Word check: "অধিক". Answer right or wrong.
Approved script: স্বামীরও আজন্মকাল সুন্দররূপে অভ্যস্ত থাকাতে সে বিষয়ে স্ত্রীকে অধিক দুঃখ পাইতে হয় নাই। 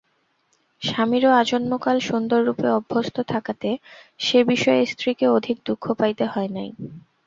right